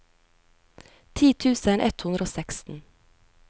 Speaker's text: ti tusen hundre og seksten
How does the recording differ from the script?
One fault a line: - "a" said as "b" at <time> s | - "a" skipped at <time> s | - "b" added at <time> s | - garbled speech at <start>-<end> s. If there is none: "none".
- "ett" added at 1.9 s